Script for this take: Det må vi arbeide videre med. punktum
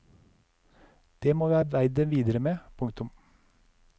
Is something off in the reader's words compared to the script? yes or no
no